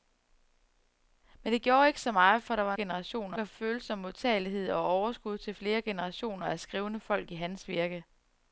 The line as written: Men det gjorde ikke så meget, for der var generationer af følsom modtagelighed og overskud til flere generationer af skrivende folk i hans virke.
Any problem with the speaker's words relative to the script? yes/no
no